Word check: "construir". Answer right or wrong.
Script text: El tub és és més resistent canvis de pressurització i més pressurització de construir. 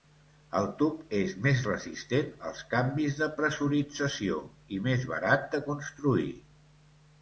right